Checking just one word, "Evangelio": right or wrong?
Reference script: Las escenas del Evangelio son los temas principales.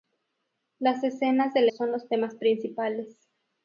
wrong